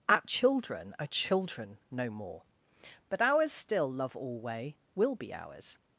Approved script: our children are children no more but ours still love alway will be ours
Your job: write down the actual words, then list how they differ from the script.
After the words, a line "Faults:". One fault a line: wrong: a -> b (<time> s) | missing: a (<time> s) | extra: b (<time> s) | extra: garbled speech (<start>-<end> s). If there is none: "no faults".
our children are children no more but ours still love alway will be ours
Faults:
no faults